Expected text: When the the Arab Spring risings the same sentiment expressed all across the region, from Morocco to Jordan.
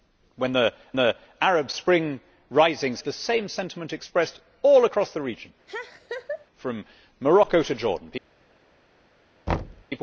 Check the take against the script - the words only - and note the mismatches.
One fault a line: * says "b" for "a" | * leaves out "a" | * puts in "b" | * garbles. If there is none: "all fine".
all fine